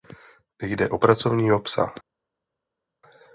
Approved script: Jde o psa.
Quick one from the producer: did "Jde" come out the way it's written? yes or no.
yes